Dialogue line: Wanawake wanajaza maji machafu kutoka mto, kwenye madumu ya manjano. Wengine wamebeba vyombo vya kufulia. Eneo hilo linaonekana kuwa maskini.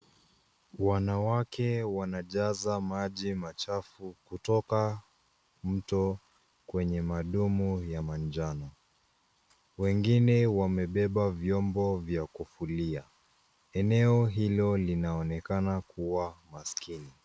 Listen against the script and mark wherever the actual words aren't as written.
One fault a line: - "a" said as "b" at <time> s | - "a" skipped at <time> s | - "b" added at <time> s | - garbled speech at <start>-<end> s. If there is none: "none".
none